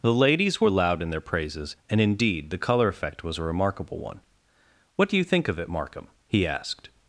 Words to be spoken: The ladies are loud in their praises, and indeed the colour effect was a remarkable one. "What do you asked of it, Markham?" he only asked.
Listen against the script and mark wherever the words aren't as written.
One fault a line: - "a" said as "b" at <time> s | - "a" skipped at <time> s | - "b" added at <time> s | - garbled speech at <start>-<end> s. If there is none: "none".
- "are" said as "were" at 0.6 s
- "asked" said as "think" at 5.2 s
- "only" skipped at 6.5 s